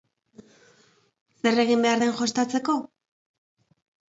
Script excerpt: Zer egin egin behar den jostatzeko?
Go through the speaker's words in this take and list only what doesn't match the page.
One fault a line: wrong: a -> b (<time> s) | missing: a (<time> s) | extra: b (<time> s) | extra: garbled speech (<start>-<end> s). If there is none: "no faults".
missing: egin (1.9 s)